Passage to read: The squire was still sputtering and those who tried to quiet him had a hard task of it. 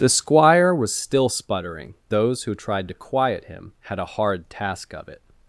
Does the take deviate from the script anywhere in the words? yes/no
yes